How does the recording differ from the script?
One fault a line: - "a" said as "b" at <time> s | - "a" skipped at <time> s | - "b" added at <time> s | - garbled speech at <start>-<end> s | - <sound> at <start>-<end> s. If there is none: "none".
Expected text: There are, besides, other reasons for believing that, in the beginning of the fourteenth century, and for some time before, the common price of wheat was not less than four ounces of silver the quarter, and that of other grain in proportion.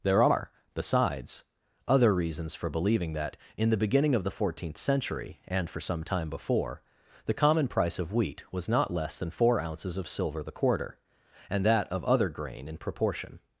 none